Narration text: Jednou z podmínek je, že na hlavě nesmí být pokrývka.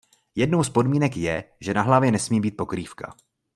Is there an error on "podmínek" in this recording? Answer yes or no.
no